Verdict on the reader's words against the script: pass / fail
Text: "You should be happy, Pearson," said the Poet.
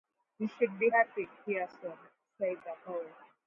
pass